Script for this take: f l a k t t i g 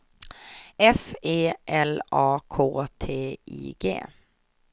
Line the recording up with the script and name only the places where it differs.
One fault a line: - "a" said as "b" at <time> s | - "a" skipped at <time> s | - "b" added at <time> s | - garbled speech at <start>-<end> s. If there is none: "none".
- "e" added at 1.2 s
- "t" skipped at 3.4 s